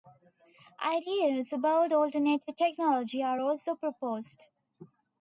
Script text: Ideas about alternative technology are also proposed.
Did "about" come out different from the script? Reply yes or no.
no